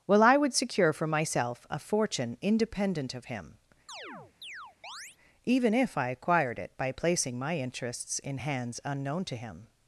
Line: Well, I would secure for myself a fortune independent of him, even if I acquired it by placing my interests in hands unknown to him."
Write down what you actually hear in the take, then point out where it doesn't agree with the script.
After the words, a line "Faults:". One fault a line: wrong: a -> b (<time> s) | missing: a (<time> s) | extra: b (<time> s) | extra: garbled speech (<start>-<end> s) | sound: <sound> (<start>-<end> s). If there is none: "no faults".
Well, I would secure for myself a fortune independent of him, even if I acquired it by placing my interests in hands unknown to him."
Faults:
sound: chirp (3.9-5.2 s)